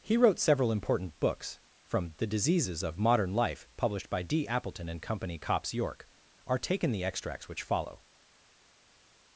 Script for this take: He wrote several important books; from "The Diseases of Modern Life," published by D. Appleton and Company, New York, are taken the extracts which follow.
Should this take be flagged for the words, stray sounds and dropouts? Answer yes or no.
yes